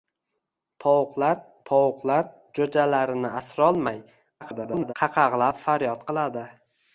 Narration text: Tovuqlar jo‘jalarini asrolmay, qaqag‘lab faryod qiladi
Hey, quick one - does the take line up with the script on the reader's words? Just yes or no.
no